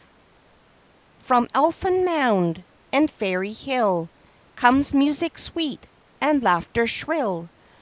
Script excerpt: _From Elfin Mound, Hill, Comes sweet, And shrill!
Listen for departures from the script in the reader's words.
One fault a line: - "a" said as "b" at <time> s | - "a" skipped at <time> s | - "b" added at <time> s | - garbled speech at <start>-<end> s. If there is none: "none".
- "And Fairy" added at 2.9 s
- "music" added at 4.9 s
- "laughter" added at 6.4 s